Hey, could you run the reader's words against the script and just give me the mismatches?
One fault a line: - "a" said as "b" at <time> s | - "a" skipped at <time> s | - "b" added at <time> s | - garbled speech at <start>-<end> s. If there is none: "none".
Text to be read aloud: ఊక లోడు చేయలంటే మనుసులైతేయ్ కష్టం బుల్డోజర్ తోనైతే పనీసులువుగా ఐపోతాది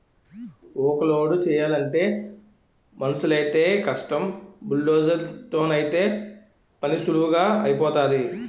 none